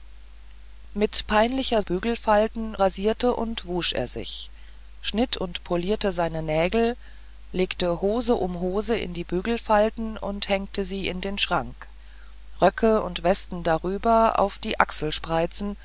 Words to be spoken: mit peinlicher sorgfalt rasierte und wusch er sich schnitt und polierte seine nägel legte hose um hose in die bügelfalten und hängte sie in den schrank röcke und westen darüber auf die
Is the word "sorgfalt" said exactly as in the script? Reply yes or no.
no